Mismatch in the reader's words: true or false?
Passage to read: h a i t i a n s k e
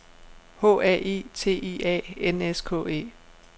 false